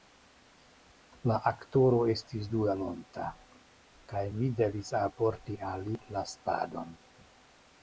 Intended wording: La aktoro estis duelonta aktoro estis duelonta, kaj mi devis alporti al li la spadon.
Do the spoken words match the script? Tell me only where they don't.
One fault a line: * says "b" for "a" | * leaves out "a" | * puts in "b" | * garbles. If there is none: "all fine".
* leaves out "aktoro estis duelonta"